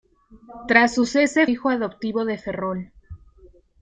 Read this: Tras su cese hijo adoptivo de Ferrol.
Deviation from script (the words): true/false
false